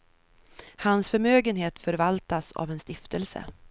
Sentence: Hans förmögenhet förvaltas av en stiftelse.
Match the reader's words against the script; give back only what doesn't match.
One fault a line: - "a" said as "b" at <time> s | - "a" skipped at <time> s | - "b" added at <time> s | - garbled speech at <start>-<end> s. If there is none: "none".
none